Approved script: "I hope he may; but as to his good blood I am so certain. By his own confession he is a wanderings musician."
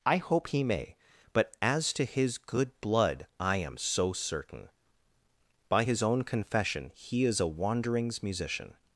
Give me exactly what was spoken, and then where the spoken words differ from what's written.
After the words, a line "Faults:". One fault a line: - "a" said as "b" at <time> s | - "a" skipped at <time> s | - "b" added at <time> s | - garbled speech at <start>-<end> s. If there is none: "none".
"I hope he may; but as to his good blood I am so certain. By his own confession he is a wanderings musician."
Faults:
none